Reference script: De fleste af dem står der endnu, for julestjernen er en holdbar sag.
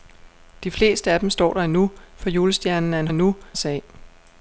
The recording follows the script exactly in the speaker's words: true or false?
false